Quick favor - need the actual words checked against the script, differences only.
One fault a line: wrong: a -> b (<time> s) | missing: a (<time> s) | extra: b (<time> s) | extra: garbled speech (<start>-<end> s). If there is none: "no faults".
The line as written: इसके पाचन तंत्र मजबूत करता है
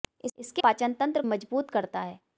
no faults